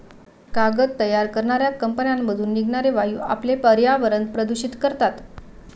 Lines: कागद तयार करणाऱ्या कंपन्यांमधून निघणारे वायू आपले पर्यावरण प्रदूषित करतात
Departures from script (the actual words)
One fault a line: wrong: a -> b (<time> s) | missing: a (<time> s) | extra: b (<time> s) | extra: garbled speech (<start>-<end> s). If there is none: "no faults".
no faults